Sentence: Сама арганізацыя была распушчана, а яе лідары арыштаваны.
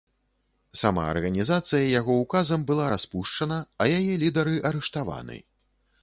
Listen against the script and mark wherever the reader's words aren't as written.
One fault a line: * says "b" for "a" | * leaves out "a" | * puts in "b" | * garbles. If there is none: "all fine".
* puts in "яго ўказам"